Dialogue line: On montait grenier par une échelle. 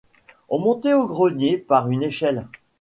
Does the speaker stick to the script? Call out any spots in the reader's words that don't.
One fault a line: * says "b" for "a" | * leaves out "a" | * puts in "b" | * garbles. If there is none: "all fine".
* puts in "au"